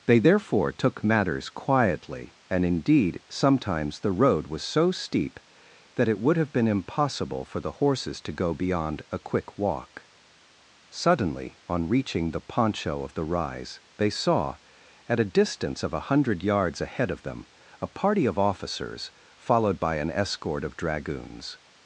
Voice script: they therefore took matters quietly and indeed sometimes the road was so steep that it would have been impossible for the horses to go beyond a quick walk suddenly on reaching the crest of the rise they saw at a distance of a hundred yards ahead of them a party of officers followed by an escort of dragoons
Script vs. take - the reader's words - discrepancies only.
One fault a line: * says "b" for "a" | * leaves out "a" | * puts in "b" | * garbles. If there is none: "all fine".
* says "poncho" for "crest"